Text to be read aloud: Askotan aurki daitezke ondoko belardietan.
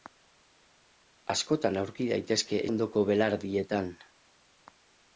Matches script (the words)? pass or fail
pass